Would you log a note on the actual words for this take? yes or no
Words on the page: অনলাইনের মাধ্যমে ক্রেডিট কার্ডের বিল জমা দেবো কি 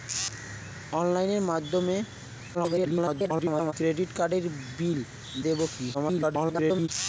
yes